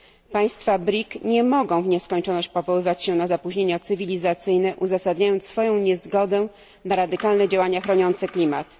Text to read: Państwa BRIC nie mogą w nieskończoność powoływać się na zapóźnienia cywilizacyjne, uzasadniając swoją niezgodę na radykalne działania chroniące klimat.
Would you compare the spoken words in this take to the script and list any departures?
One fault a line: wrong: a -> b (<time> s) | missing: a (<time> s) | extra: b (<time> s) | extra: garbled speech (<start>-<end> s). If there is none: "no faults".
no faults